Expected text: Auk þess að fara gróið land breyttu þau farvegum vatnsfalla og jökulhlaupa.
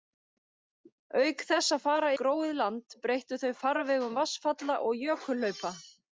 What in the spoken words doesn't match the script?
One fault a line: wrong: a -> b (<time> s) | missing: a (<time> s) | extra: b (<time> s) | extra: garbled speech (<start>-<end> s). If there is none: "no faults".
no faults